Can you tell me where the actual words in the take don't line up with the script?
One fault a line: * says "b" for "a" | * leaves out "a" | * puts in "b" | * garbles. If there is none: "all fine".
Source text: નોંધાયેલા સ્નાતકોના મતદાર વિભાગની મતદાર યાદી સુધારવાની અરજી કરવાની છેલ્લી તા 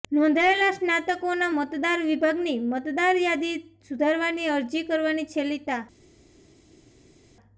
all fine